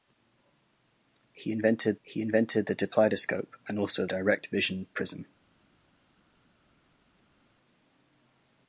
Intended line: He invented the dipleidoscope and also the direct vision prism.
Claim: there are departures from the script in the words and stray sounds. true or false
true